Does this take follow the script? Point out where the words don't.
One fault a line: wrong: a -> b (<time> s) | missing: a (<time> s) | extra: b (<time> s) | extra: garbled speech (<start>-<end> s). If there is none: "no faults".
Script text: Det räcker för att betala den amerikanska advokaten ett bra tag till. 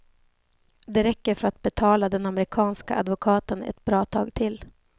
no faults